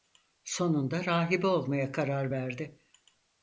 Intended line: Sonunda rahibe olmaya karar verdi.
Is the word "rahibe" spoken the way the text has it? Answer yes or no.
yes